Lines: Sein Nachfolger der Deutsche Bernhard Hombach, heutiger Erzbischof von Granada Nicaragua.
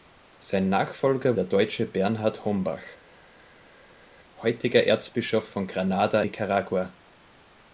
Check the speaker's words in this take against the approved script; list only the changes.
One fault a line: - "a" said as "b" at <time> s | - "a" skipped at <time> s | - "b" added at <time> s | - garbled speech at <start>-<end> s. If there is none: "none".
none